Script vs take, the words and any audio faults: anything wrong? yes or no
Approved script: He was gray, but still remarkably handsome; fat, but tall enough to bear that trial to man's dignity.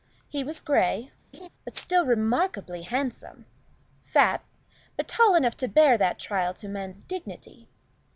yes